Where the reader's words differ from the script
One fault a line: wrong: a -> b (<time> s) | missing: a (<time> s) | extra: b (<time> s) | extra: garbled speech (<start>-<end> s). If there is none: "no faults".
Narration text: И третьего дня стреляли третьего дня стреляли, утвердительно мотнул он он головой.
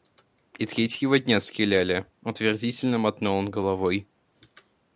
missing: третьего дня стреляли (2.1 s)
missing: он (3.5 s)